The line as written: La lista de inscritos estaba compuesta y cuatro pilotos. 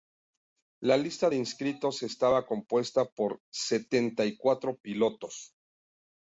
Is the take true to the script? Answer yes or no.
no